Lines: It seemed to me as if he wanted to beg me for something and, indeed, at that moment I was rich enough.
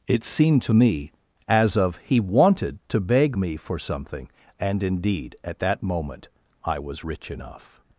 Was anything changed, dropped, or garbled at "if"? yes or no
yes